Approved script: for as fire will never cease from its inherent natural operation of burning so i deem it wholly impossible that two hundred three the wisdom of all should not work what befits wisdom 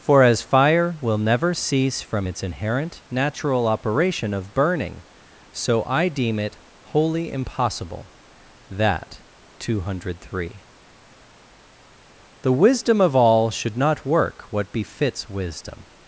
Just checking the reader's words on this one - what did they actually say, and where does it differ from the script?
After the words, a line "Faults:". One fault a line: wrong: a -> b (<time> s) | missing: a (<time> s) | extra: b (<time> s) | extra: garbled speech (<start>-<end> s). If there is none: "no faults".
for as fire will never cease from its inherent natural operation of burning so i deem it wholly impossible that two hundred three the wisdom of all should not work what befits wisdom
Faults:
no faults